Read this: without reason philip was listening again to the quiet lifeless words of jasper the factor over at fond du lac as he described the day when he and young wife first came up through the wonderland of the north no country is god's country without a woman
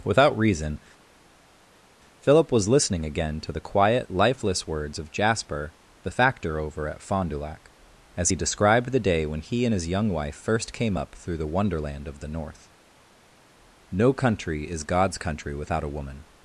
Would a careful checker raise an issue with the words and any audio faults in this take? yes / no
yes